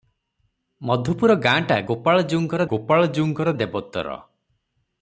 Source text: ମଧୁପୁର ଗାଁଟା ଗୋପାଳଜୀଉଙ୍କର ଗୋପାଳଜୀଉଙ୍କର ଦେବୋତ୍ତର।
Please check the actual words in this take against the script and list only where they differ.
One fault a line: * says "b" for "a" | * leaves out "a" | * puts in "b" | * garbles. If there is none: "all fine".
all fine